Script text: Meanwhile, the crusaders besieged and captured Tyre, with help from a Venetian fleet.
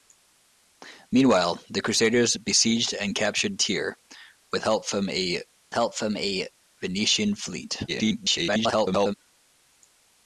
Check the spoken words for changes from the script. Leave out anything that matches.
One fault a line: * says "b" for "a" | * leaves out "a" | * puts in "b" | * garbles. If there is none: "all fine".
* puts in "help from a"
* garbles